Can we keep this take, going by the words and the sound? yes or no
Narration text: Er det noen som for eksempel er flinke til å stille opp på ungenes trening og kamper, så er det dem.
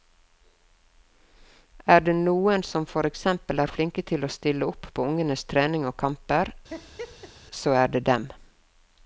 no